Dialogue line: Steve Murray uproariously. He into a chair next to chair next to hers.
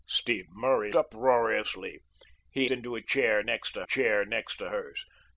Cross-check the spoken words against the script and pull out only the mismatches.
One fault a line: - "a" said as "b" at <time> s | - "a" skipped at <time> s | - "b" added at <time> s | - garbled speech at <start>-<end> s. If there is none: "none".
none